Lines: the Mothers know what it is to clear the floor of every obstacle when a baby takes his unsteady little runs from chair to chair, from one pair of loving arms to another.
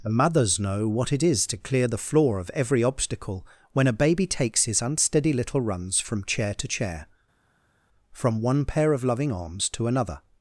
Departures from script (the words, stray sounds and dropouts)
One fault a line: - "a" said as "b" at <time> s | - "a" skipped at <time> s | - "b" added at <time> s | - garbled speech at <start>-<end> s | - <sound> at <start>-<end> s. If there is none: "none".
none